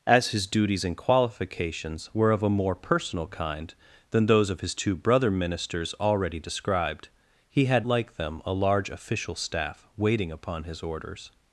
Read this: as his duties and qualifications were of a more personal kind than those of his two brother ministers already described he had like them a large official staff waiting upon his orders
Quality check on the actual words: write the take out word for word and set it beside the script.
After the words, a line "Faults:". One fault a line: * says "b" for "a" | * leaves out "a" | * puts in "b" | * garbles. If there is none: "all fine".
as his duties and qualifications were of a more personal kind than those of his two brother ministers already described he had like them a large official staff waiting upon his orders
Faults:
all fine